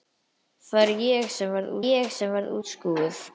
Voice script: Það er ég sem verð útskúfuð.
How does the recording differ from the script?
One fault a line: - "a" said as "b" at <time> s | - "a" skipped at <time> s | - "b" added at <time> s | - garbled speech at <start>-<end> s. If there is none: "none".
- "ég sem verð" added at 1.9 s